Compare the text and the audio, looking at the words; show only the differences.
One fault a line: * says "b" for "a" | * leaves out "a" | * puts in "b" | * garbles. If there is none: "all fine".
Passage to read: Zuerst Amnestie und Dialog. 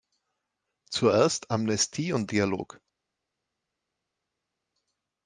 all fine